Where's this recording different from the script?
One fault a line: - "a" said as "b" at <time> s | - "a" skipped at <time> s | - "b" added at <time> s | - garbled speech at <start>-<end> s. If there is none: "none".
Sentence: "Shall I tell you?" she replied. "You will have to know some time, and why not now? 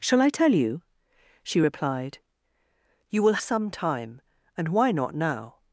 - "have to know" skipped at 3.4 s